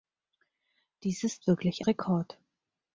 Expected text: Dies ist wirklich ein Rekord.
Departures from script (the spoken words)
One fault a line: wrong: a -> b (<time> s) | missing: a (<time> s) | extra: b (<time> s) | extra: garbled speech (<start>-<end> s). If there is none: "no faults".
missing: ein (1.9 s)